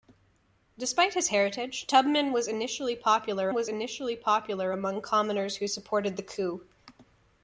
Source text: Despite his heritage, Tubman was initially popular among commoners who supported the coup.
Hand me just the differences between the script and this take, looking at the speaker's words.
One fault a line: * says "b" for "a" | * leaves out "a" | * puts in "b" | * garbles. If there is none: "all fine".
* puts in "was initially popular"